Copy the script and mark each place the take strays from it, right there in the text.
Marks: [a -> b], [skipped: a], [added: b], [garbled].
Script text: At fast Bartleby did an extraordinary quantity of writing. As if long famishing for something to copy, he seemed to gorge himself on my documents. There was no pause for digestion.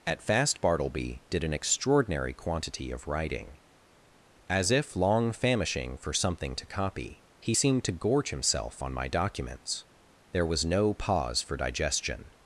At fast Bartleby did an extraordinary quantity of writing. As if long famishing for something to copy, he seemed to gorge himself on my documents. There was no pause for digestion.